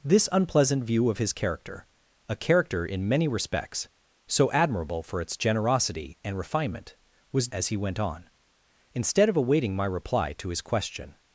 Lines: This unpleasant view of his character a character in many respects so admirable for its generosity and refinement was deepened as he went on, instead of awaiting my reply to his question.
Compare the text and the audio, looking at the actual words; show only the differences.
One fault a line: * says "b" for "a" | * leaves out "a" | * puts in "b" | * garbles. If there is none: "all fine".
* leaves out "deepened"